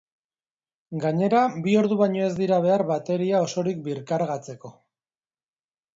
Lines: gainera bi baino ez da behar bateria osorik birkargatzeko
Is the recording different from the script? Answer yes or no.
yes